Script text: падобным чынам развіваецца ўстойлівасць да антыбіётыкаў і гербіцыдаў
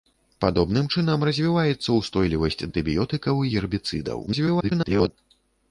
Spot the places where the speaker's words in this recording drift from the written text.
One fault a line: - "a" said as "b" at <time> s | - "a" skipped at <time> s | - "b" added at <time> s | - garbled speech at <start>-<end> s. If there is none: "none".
- "да" skipped at 2.6 s
- garbled speech at 4.3-5.1 s